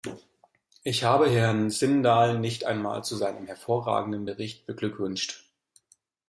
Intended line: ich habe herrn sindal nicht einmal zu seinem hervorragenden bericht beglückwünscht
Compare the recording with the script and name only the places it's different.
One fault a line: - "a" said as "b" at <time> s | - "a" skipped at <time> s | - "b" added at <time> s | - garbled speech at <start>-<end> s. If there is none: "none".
none